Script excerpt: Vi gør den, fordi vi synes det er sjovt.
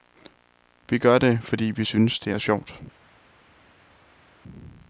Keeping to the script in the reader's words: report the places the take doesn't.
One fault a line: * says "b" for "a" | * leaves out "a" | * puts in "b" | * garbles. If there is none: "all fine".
* says "det" for "den"